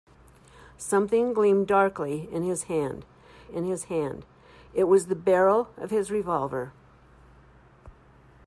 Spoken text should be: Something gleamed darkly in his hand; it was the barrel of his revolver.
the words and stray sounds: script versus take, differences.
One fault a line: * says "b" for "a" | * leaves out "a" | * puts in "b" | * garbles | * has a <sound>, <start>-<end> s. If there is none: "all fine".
* puts in "in his hand"